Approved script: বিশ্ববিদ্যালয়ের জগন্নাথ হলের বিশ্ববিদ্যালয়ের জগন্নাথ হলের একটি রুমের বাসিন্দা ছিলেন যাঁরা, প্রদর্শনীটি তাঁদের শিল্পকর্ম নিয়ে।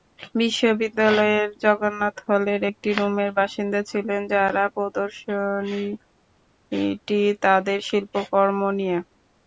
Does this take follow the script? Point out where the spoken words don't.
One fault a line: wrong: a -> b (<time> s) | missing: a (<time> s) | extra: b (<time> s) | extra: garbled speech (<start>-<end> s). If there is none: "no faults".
missing: বিশ্ববিদ্যালয়ের জগন্নাথ হলের (2.6 s)